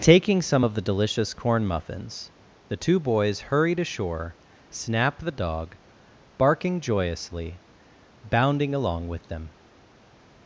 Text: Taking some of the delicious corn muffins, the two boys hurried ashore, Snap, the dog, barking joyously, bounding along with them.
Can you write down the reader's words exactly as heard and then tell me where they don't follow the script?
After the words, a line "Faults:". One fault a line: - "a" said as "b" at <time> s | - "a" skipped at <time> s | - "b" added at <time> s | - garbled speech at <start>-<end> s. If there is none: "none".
Taking some of the delicious corn muffins, the two boys hurried ashore, Snap, the dog, barking joyously, bounding along with them.
Faults:
none